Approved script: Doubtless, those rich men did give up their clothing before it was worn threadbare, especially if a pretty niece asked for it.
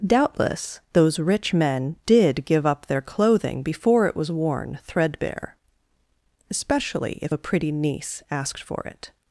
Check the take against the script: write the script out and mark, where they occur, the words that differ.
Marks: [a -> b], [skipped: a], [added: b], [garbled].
Doubtless, those rich men did give up their clothing before it was worn threadbare, especially if a pretty niece asked for it.